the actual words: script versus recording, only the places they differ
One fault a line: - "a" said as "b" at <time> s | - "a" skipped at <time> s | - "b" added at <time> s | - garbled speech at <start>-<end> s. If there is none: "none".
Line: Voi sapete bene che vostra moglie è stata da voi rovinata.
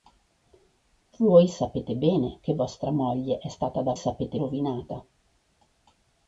- "voi" said as "sapete" at 3.9 s